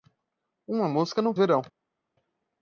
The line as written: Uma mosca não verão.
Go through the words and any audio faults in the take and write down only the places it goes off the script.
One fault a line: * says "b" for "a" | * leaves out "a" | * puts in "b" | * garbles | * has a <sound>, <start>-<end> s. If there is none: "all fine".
all fine